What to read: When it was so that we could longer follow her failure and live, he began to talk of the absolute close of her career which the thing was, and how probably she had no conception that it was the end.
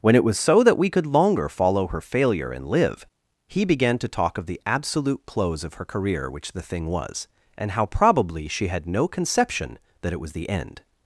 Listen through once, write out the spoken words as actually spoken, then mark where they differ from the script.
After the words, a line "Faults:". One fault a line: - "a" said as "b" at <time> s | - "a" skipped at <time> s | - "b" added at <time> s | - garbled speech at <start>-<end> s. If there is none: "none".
When it was so that we could longer follow her failure and live, he began to talk of the absolute close of her career which the thing was, and how probably she had no conception that it was the end.
Faults:
none